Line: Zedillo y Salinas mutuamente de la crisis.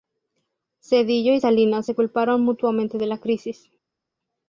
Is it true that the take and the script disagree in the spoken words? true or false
true